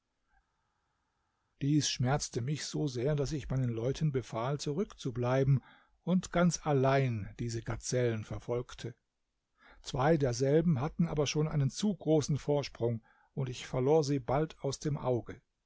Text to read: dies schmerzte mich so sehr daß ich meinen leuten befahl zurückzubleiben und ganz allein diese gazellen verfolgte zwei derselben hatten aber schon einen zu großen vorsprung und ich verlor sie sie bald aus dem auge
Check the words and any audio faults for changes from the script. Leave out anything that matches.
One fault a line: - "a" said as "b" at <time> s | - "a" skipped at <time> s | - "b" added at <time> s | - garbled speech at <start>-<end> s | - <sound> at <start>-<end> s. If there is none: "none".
- "sie" skipped at 14.2 s